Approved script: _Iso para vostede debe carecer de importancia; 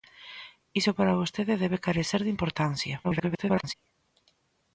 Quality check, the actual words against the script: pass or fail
fail